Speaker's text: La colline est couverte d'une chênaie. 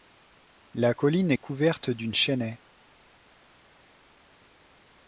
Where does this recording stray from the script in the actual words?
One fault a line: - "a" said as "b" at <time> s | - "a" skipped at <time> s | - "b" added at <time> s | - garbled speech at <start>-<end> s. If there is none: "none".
none